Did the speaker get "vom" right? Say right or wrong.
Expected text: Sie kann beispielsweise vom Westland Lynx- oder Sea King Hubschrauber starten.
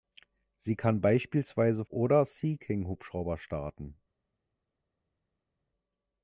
wrong